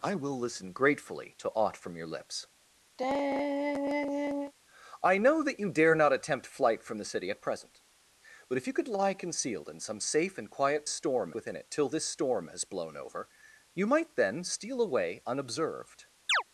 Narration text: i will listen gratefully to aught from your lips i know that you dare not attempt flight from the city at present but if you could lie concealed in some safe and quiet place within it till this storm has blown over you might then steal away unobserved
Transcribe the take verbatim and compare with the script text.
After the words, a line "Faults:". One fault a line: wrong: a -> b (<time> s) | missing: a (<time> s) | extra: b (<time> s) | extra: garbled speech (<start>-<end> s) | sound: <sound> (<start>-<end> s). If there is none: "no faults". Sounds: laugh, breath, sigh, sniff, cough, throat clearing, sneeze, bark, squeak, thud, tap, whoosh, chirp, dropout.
i will listen gratefully to aught from your lips i know that you dare not attempt flight from the city at present but if you could lie concealed in some safe and quiet storm within it till this storm has blown over you might then steal away unobserved
Faults:
sound: sigh (3.0-4.5 s)
wrong: place -> storm (10.9 s)
sound: chirp (16.3-16.4 s)